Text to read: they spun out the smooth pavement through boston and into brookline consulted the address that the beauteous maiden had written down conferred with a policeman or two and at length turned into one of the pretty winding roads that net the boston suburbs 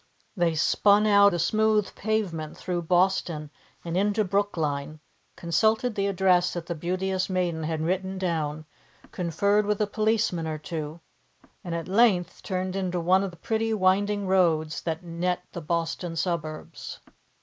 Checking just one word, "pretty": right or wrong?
right